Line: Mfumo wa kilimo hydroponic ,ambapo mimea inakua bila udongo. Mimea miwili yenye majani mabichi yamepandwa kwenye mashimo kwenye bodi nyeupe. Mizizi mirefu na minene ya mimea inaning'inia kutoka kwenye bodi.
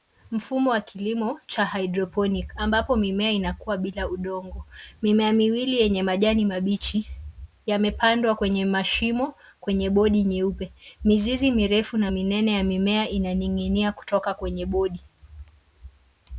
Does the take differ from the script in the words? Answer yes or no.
yes